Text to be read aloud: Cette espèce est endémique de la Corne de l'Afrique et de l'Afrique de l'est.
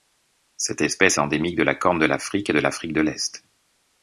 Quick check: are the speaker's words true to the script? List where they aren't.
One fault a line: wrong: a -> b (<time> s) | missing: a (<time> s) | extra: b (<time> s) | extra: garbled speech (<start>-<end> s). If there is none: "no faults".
missing: est (1.2 s)